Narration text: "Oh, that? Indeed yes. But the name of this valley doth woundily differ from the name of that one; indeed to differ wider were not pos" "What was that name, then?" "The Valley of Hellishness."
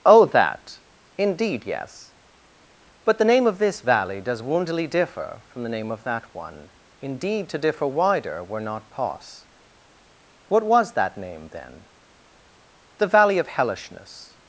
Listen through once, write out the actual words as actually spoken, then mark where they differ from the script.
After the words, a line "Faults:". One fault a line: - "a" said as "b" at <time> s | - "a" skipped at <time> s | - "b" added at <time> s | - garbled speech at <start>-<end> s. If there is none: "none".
"Oh, that? Indeed yes. But the name of this valley does woundily differ from the name of that one; indeed to differ wider were not pos" "What was that name, then?" "The Valley of Hellishness."
Faults:
- "doth" said as "does" at 4.2 s